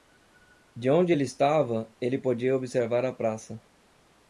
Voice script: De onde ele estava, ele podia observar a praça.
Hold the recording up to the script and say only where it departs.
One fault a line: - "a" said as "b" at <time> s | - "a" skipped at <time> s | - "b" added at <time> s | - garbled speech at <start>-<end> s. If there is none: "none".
none